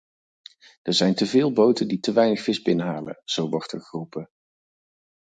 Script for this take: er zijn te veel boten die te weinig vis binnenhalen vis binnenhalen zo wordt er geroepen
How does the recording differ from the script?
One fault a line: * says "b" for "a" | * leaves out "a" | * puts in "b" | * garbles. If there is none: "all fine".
* leaves out "vis binnenhalen"